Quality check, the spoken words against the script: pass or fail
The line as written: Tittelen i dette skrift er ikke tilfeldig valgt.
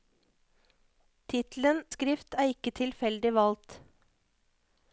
fail